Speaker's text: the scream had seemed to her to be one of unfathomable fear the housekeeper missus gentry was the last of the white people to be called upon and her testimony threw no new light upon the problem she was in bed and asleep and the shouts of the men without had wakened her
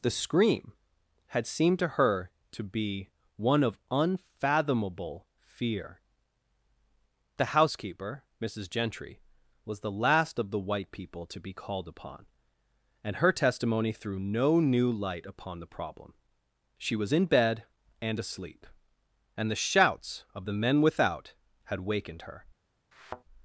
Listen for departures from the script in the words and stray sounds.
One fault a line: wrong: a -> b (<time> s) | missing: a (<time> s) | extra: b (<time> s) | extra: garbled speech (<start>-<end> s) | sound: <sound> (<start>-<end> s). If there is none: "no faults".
sound: thud (22.9-23.2 s)